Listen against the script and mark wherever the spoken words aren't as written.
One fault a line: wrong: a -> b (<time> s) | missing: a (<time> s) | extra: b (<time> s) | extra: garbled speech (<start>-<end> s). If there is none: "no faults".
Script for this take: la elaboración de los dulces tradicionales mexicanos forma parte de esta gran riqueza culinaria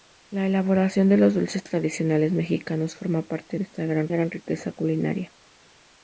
extra: gran (4.1 s)